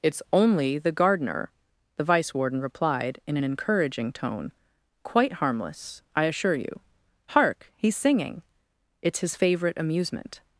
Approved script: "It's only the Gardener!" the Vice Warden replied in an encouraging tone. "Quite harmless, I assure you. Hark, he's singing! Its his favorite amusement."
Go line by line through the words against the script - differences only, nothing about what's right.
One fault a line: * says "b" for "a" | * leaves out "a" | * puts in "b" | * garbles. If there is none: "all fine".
all fine